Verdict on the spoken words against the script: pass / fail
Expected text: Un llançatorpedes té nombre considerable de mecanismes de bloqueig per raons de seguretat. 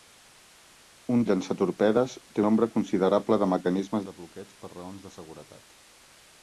pass